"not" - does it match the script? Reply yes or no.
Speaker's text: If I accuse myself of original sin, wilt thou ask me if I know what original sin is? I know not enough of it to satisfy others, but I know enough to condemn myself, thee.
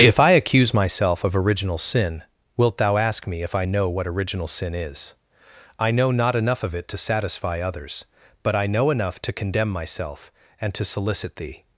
yes